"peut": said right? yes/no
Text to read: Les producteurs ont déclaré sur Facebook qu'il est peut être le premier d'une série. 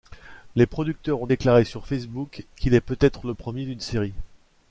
yes